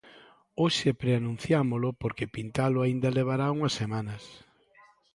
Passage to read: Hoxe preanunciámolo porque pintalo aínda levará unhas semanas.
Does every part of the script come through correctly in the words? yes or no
yes